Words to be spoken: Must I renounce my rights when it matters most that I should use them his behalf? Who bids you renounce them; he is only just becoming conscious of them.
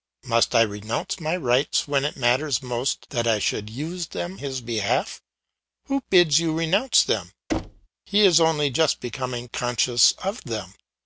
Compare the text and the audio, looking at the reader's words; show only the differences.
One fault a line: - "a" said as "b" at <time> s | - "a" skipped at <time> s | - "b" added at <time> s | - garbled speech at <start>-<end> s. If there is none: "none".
none